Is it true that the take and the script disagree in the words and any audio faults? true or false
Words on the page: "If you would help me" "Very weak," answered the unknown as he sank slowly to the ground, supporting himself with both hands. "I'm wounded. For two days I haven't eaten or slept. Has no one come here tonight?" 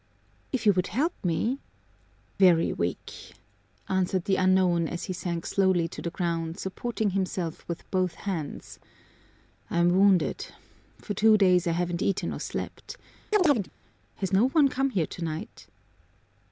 true